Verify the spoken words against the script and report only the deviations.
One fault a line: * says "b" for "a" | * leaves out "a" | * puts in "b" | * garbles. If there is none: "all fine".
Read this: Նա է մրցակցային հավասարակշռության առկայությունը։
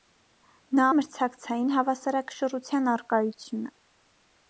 all fine